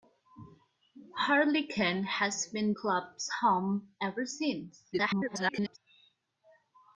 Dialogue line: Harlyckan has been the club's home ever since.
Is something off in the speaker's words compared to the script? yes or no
yes